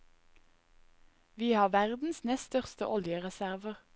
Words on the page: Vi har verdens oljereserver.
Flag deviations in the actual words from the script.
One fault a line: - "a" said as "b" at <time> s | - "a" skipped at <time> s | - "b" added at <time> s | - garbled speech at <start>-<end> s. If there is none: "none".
- "nest største" added at 2.2 s